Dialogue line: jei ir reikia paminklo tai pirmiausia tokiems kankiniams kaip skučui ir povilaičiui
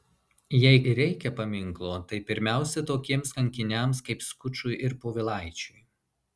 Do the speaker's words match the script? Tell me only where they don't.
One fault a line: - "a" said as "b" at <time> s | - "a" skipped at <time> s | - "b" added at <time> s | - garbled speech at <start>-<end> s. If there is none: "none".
none